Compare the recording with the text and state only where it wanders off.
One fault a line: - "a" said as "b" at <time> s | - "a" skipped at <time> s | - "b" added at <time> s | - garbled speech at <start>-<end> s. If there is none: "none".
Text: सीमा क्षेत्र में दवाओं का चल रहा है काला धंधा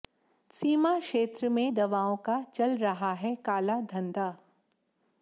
none